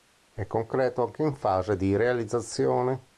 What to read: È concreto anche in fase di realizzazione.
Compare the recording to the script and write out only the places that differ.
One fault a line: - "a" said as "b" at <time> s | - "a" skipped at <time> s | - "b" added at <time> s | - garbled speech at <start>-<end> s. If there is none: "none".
none